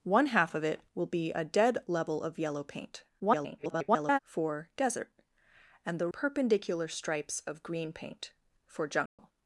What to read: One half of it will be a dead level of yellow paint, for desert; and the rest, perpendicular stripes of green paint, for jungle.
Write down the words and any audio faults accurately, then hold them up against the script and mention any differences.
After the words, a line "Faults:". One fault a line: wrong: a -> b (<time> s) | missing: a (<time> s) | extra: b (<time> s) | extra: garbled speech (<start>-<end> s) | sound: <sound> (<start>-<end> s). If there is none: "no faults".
One half of it will be a dead level of yellow paint, [garbled] for desert; and the perpendicular stripes of green paint, for jungle.
Faults:
extra: garbled speech (3.2-4.2 s)
missing: rest (6.1 s)
sound: dropout (9.1-9.2 s)